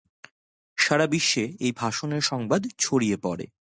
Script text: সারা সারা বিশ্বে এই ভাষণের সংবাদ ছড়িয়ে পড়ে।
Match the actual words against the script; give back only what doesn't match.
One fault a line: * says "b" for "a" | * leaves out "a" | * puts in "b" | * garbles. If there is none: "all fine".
* leaves out "সারা"